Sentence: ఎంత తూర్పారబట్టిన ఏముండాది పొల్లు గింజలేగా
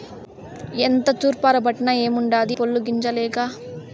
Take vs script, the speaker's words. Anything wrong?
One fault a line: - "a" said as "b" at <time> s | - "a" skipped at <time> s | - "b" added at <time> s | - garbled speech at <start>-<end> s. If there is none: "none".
none